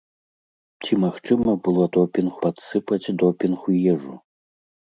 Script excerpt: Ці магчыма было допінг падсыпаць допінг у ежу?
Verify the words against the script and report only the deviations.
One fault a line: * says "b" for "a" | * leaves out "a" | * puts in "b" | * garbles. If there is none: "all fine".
all fine